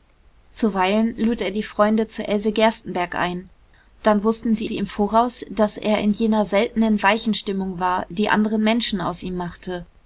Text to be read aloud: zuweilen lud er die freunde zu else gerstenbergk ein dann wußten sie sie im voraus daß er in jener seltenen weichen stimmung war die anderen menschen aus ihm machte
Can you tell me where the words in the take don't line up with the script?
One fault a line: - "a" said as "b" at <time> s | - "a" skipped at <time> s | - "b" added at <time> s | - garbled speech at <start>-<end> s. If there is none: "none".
none